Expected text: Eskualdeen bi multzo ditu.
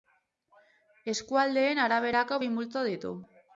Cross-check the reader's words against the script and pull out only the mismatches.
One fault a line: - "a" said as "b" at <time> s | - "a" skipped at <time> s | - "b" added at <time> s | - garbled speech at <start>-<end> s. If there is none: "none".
- "araberako" added at 1.9 s